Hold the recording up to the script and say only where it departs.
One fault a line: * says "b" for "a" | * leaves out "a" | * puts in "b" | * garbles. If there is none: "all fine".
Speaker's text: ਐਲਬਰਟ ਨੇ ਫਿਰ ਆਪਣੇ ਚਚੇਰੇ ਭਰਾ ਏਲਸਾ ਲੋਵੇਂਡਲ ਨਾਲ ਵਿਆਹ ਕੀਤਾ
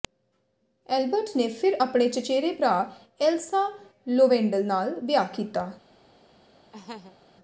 all fine